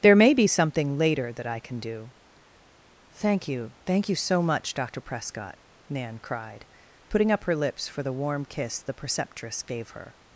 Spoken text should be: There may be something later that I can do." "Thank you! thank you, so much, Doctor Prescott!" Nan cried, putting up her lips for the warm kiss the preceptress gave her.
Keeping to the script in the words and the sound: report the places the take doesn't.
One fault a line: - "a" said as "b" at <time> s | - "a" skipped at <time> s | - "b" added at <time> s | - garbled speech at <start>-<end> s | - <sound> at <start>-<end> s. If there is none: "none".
none